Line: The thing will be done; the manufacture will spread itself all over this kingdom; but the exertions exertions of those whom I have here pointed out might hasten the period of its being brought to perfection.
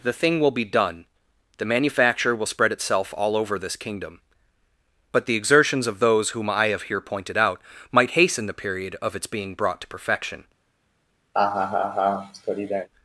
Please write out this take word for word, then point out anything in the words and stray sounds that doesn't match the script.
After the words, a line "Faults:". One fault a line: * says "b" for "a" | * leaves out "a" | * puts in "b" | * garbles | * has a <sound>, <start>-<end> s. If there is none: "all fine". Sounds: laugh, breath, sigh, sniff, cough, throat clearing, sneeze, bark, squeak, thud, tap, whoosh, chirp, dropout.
The thing will be done; the manufacture will spread itself all over this kingdom; but the exertions of those whom I have here pointed out might hasten the period of its being brought to perfection.
Faults:
* leaves out "exertions"
* has a laugh, 11.3-12.9 s